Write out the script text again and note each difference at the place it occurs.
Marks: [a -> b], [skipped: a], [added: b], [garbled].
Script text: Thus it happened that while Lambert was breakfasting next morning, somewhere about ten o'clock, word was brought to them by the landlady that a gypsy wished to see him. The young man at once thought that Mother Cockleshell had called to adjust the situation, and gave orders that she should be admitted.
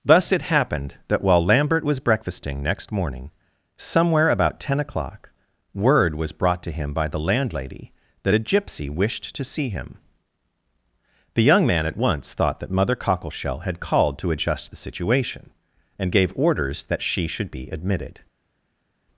Thus it happened that while Lambert was breakfasting next morning, somewhere about ten o'clock, word was brought to [them -> him] by the landlady that a gypsy wished to see him. The young man at once thought that Mother Cockleshell had called to adjust the situation, and gave orders that she should be admitted.